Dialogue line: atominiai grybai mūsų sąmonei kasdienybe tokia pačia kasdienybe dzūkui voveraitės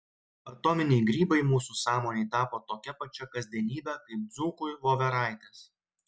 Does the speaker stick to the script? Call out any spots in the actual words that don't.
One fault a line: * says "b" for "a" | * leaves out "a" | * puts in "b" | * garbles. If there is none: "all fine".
* says "tapo" for "kasdienybe"
* puts in "kaip"